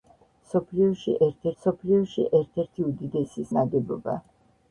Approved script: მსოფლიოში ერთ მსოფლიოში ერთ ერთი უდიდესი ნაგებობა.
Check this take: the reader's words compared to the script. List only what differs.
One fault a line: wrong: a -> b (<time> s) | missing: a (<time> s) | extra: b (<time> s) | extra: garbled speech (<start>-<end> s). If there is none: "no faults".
no faults